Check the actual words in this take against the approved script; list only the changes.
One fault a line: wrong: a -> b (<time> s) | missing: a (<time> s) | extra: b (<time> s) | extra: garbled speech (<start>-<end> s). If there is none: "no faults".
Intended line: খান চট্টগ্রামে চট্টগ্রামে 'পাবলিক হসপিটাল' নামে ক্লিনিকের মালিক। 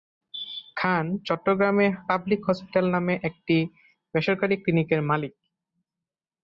missing: চট্টগ্রামে (1.9 s)
extra: একটি বেসরকারি (3.3 s)